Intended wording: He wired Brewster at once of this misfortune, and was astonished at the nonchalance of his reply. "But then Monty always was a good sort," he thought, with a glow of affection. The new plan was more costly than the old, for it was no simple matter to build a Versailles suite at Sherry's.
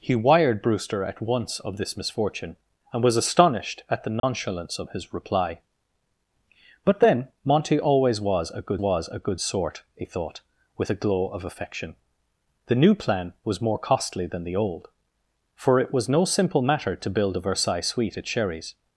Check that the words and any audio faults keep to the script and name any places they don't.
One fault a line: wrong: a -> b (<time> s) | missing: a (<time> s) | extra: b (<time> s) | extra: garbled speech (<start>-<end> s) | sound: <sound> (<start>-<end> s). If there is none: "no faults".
sound: dropout (4.2-4.2 s)
extra: was a good (8.8 s)